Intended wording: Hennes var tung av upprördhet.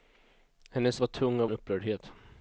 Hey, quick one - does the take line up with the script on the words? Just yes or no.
yes